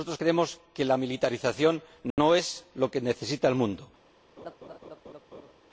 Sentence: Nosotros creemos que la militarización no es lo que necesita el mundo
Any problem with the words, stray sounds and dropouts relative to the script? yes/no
yes